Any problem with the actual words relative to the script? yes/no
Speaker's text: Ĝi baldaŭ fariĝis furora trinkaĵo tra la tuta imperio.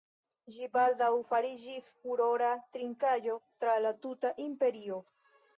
no